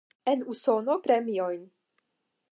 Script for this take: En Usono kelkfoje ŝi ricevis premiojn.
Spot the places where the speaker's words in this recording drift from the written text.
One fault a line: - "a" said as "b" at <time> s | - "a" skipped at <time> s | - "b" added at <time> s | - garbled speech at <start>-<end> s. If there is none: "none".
- "kelkfoje ŝi ricevis" skipped at 0.9 s